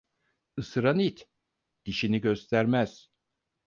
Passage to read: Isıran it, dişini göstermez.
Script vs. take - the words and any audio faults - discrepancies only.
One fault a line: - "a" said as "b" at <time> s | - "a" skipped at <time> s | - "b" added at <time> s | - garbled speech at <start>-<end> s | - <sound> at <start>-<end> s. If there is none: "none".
none